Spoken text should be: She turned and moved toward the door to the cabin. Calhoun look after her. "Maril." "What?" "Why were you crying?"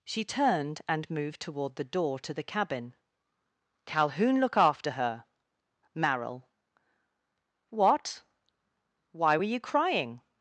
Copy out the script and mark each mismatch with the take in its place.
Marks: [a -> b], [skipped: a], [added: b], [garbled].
She turned and moved toward the door to the cabin. Calhoun look after her. "Maril." "What?" "Why were you crying?"